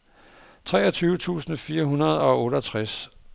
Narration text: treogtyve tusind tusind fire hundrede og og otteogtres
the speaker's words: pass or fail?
fail